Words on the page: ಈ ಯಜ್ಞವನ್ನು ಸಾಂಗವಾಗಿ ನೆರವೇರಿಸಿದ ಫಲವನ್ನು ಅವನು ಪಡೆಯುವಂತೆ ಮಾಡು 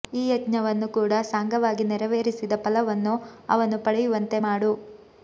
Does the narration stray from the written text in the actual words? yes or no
yes